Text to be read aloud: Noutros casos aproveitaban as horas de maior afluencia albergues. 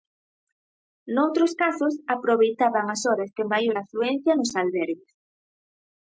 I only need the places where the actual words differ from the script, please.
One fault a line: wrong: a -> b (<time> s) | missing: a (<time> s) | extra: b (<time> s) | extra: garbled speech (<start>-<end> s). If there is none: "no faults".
extra: nos (4.4 s)